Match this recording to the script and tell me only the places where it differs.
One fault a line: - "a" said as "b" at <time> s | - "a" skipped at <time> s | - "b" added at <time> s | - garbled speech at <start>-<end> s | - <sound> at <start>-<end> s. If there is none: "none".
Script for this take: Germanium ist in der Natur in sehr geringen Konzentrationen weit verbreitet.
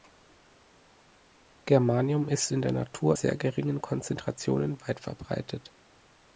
- "in" skipped at 3.2 s